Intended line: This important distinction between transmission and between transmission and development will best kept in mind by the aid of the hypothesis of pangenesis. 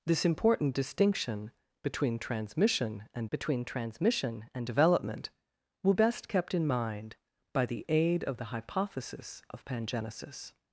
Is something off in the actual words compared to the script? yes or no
no